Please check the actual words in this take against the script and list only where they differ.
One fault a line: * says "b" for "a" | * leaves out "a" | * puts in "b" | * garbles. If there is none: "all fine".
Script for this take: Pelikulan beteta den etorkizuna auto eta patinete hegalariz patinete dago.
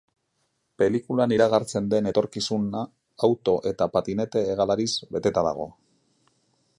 * says "iragartzen" for "beteta"
* says "beteta" for "patinete"